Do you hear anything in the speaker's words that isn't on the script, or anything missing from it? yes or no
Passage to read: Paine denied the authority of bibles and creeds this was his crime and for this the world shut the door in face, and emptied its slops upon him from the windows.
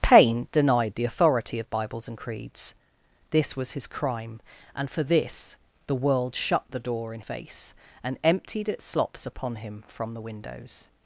no